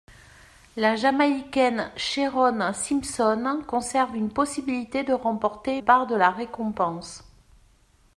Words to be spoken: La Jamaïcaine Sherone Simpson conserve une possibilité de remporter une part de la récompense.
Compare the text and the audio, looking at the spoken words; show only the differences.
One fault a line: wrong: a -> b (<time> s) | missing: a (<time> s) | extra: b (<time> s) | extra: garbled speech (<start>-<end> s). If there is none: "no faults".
missing: une (5.8 s)